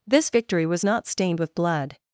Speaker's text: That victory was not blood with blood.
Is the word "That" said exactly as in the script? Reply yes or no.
no